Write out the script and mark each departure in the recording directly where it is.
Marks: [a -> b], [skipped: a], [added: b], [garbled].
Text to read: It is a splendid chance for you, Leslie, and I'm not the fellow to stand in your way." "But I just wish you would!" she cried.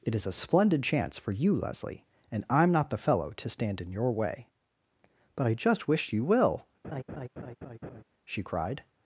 It is a splendid chance for you, Leslie, and I'm not the fellow to stand in your way." "But I just wish you [would!" -> will] she cried.